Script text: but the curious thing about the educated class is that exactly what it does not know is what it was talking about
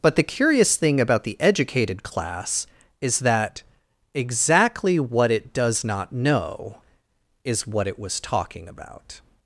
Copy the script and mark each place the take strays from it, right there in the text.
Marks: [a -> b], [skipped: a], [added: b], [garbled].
but the curious thing about the educated class is that exactly what it does not know is what it was talking about